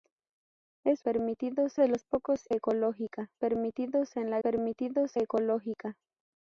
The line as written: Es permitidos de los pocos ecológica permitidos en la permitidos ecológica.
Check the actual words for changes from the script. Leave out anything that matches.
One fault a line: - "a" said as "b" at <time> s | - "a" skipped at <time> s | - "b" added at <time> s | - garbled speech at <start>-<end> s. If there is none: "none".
none